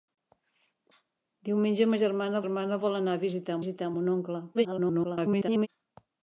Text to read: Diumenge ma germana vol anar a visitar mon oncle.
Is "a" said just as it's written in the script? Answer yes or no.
yes